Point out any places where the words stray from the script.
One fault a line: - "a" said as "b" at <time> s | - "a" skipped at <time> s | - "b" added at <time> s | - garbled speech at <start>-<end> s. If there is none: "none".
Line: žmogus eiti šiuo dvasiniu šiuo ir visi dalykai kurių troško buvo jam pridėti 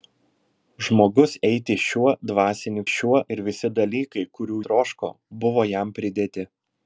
none